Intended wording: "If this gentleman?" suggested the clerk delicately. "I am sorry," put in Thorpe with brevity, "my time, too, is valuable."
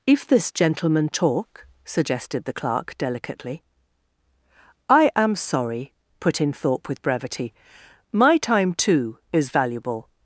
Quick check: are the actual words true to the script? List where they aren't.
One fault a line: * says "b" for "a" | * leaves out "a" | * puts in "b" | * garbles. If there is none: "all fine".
* puts in "talk"